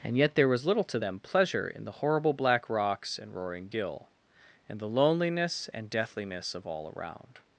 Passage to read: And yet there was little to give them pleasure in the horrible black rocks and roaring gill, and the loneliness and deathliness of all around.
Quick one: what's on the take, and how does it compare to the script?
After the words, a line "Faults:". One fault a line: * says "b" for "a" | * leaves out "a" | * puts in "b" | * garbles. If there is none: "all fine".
And yet there was little to them pleasure in the horrible black rocks and roaring gill, and the loneliness and deathliness of all around.
Faults:
* leaves out "give"